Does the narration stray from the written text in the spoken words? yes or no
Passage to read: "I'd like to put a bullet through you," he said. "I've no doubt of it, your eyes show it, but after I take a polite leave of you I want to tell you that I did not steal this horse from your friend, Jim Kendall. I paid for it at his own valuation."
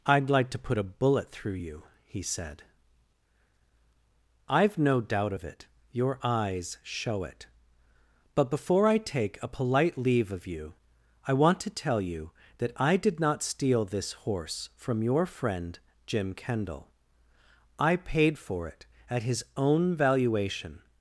yes